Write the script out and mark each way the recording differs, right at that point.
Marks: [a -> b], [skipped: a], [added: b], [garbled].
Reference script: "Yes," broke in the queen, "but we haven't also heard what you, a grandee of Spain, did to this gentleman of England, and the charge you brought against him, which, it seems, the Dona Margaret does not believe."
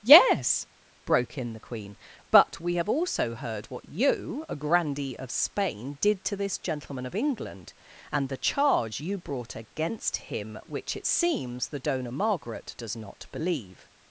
"Yes," broke in the queen, "but we [haven't -> have] also heard what you, a grandee of Spain, did to this gentleman of England, and the charge you brought against him, which, it seems, the Dona Margaret does not believe."